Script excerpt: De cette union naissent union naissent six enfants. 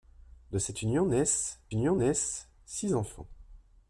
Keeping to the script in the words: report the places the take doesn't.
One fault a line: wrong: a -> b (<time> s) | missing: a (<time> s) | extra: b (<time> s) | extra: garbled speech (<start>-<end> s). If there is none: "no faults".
no faults